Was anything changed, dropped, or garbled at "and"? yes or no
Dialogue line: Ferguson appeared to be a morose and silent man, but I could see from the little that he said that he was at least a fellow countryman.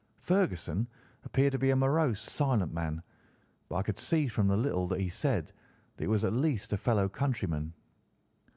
yes